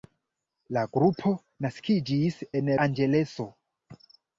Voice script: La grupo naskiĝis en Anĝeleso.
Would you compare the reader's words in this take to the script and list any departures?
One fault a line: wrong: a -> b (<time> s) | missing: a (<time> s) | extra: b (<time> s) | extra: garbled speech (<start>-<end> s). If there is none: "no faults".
no faults